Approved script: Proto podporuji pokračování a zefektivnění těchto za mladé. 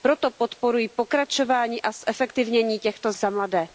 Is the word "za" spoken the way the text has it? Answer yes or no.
yes